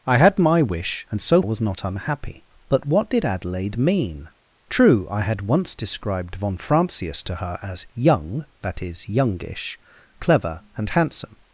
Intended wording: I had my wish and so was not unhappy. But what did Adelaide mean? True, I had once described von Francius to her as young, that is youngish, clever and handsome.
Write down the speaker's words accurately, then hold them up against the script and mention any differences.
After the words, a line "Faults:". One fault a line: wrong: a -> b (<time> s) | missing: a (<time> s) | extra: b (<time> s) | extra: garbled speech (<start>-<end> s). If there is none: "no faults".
I had my wish and so was not unhappy. But what did Adelaide mean? True, I had once described von Francius to her as young, that is youngish, clever and handsome.
Faults:
no faults